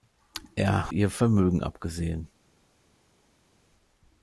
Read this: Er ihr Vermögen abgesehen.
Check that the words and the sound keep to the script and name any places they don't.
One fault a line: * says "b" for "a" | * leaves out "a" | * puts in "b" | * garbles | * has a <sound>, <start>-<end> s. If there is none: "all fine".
all fine